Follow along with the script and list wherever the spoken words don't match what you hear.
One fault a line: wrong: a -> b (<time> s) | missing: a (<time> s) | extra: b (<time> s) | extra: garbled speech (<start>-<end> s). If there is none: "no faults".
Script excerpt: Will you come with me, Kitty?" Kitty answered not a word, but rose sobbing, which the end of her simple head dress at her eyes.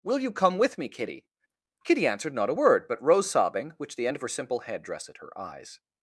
no faults